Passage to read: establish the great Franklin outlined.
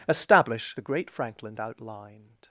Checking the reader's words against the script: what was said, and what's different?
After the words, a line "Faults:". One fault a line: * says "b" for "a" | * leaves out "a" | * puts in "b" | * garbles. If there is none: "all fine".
establish the great Franklin outlined.
Faults:
all fine